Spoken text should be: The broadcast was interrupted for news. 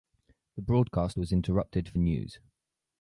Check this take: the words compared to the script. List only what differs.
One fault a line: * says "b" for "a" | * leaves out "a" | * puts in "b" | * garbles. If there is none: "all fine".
all fine